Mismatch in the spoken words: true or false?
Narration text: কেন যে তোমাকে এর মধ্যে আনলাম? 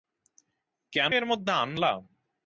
true